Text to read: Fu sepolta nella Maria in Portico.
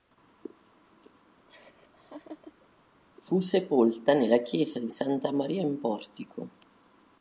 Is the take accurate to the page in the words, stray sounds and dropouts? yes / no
no